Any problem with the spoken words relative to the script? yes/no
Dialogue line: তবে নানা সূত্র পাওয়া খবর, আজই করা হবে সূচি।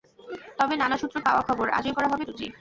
no